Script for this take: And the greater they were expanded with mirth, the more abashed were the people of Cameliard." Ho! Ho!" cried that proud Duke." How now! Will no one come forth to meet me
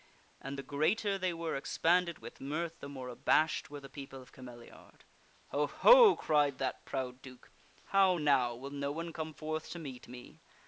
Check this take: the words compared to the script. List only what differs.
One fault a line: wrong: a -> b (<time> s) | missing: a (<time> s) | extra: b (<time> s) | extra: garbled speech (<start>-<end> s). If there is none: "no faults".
no faults